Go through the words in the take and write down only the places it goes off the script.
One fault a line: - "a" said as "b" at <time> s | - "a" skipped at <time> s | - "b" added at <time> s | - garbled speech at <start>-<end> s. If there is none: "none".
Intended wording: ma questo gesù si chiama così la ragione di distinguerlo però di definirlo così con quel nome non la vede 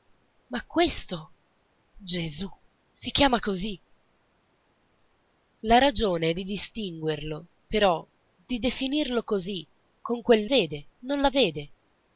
- "nome" said as "vede" at 10.4 s